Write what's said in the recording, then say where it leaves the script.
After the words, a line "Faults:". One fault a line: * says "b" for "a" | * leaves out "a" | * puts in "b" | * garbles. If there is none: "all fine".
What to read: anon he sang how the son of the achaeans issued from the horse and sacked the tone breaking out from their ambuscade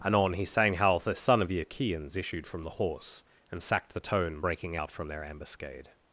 anon he sang how the son of the achaeans issued from the horse and sacked the tone breaking out from their ambuscade
Faults:
all fine